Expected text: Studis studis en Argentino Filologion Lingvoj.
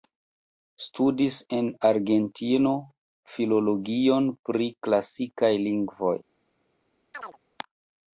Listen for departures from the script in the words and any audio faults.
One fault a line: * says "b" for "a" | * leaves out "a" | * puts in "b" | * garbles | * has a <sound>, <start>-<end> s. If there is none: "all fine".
* leaves out "studis"
* puts in "pri Klasikaj"
* has a chirp, 7.1-7.4 s